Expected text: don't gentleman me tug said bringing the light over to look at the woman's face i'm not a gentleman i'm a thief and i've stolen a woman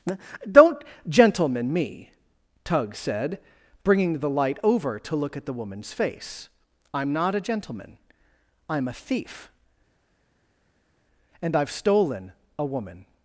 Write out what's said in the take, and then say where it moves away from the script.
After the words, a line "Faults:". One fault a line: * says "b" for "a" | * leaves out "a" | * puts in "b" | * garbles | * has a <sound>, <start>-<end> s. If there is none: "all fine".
don't gentleman me tug said bringing the light over to look at the woman's face i'm not a gentleman i'm a thief and i've stolen a woman
Faults:
all fine